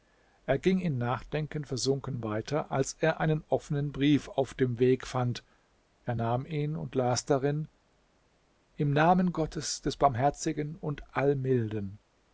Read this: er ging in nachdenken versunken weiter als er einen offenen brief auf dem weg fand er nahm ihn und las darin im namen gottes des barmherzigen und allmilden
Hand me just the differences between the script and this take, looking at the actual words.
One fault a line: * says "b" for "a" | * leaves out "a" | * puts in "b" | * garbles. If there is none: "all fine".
all fine